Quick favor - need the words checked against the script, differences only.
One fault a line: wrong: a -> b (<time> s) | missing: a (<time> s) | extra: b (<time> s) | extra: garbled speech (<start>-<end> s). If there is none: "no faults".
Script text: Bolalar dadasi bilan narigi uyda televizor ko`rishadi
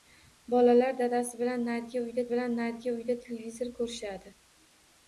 extra: bilan narigi uyda (2.3 s)